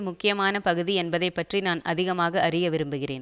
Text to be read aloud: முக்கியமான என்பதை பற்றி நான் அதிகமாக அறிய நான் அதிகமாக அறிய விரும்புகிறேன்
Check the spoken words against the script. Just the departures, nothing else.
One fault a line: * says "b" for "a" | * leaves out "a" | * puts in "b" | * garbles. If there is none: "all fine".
* puts in "பகுதி"
* leaves out "நான் அதிகமாக அறிய"